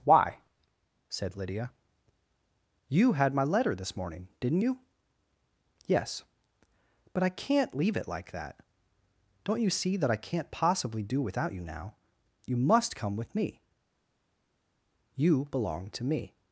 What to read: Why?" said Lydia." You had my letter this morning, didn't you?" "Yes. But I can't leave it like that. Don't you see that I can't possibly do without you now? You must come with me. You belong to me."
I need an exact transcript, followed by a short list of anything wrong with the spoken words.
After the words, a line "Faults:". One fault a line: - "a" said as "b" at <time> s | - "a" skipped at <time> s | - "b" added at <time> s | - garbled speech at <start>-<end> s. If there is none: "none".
Why?" said Lydia." You had my letter this morning, didn't you?" "Yes. But I can't leave it like that. Don't you see that I can't possibly do without you now? You must come with me. You belong to me."
Faults:
none